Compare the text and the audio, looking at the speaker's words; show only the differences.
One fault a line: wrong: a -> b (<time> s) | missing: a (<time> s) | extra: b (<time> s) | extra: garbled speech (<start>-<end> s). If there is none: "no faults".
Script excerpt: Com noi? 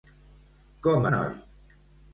no faults